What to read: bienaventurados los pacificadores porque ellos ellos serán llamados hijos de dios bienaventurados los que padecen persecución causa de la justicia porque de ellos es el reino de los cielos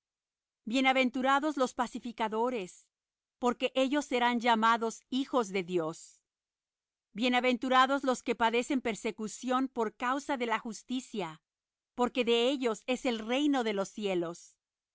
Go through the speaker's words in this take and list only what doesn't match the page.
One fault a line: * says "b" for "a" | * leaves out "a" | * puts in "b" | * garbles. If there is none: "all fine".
* leaves out "ellos"
* puts in "por"